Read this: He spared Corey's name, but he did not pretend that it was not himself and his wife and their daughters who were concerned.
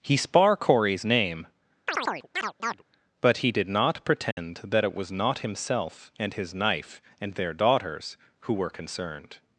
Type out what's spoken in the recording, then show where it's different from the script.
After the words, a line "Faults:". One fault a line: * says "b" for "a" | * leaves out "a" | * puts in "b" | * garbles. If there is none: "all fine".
He spar Corey's name, but he did not pretend that it was not himself and his knife and their daughters who were concerned.
Faults:
* says "spar" for "spared"
* says "knife" for "wife"